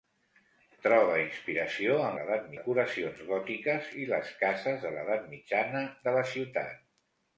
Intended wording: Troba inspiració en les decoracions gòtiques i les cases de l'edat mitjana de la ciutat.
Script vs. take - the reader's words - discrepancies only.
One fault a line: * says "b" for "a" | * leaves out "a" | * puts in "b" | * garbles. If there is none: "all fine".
* says "l'edat" for "les"